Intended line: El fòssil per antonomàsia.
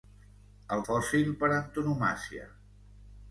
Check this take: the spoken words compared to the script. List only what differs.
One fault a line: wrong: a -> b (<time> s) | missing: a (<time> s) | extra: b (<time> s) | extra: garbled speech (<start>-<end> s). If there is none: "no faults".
no faults